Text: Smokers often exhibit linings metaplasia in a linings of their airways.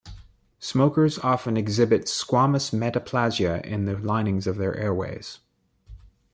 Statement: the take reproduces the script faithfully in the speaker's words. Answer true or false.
false